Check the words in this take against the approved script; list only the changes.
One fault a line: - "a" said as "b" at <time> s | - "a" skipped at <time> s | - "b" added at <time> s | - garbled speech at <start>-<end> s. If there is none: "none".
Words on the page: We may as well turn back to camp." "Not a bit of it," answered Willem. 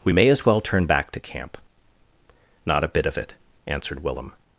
none